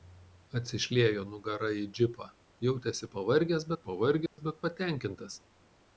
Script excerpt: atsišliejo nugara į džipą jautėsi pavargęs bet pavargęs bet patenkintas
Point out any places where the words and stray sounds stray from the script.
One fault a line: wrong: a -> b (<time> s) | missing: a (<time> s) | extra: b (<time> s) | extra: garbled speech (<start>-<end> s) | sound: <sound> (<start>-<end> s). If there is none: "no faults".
sound: dropout (4.3-4.4 s)